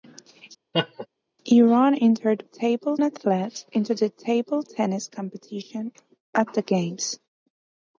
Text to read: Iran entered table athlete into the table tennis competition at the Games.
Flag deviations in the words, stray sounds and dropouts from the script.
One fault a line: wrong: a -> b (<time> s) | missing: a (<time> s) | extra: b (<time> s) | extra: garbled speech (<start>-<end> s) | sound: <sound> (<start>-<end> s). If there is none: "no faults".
sound: laugh (0.7-1.1 s)